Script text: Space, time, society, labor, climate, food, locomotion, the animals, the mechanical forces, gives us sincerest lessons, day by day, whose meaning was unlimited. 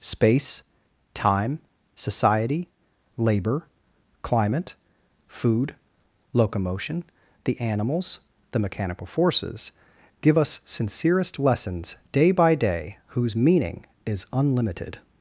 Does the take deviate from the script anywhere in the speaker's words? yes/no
yes